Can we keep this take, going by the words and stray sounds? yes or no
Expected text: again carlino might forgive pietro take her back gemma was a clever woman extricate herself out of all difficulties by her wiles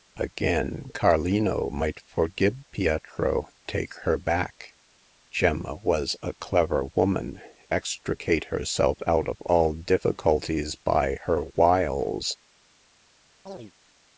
no